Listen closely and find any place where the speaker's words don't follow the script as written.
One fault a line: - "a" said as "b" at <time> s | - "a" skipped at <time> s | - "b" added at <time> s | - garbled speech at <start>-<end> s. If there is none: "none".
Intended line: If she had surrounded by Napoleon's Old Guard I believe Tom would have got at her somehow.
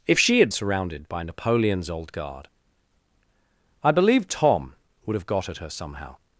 none